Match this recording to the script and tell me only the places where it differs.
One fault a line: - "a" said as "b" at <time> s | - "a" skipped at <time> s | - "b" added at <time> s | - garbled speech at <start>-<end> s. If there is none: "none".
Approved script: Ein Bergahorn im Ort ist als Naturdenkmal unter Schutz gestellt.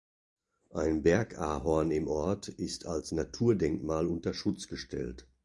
none